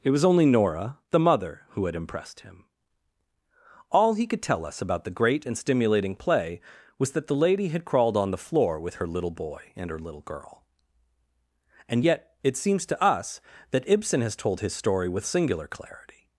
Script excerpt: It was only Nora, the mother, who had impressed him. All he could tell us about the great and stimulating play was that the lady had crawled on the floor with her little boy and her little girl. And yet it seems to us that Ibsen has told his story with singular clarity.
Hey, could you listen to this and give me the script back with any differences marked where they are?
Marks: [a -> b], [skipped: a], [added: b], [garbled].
It was only Nora, the mother, who had impressed him. All he could tell us about the great and stimulating play was that the lady had crawled on the floor with her little boy and her little girl. And yet it seems to us that Ibsen has told his story with singular clarity.